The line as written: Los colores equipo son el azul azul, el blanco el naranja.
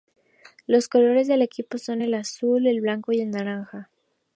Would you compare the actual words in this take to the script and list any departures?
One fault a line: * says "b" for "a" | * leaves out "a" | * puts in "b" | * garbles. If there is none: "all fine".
* puts in "del"
* leaves out "azul"
* puts in "y"